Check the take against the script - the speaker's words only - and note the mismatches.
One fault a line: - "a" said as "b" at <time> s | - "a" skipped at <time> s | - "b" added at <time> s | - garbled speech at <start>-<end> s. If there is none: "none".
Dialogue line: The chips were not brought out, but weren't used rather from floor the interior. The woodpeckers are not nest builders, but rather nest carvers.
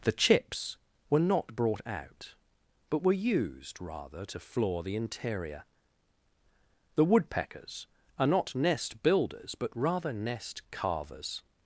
- "weren't" said as "were" at 3.0 s
- "from" said as "to" at 4.3 s